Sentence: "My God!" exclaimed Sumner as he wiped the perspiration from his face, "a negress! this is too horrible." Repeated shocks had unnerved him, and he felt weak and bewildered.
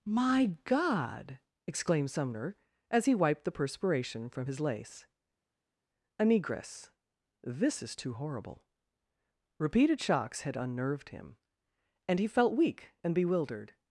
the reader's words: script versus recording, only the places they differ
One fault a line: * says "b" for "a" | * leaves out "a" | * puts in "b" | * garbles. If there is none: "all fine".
* says "lace" for "face"